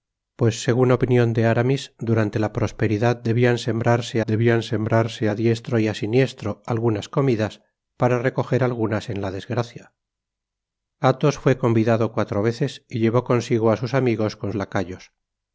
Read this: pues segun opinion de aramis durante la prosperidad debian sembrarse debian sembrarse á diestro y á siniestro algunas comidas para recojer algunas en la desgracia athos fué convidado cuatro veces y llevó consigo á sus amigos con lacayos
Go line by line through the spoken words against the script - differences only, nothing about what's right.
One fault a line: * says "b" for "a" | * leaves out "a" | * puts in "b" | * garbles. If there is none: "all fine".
all fine